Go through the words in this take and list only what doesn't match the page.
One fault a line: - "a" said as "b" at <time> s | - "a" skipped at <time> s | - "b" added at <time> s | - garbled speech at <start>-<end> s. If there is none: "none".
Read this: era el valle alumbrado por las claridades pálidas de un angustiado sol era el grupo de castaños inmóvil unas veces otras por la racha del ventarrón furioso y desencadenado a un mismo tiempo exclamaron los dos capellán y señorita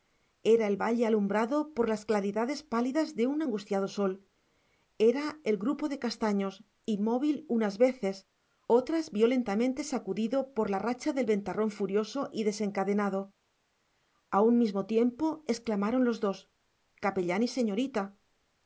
- "violentamente sacudido" added at 9.1 s